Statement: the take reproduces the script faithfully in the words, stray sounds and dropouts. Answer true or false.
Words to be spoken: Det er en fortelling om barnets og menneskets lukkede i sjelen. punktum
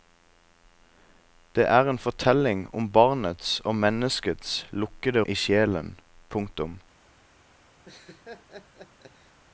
false